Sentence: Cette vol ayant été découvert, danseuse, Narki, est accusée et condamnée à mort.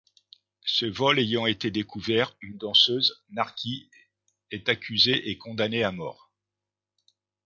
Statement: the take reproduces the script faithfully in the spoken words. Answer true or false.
false